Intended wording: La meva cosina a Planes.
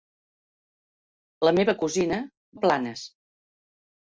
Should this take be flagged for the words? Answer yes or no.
no